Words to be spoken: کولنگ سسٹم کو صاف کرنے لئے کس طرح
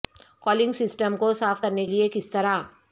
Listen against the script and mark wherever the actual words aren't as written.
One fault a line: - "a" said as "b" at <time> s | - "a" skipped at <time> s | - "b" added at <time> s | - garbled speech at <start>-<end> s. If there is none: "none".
none